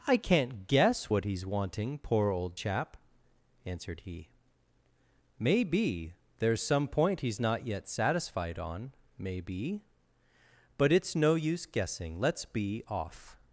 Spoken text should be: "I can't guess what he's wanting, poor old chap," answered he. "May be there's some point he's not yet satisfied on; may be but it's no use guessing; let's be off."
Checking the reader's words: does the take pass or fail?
pass